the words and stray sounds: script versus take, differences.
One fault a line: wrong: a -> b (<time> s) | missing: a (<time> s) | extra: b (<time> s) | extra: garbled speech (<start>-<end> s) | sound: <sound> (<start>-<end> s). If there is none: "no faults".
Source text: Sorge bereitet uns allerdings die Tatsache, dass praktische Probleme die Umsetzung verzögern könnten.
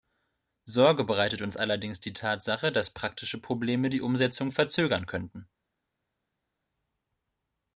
no faults